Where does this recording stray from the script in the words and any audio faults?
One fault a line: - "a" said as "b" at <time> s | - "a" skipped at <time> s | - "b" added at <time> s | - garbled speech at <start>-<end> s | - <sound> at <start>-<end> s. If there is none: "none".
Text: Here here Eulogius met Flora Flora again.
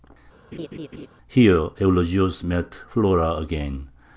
- laugh at 0.5-1.1 s
- "here" skipped at 1.7 s
- "Flora" skipped at 3.4 s